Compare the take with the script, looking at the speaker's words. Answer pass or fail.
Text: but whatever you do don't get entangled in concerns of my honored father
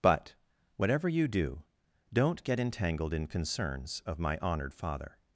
pass